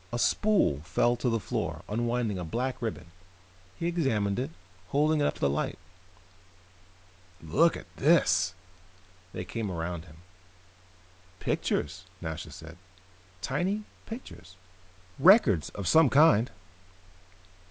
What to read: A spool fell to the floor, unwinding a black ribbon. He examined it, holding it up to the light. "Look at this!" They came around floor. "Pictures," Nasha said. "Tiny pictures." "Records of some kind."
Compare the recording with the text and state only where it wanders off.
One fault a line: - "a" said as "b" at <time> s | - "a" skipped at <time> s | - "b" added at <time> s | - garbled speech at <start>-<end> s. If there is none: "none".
- "floor" said as "him" at 10.0 s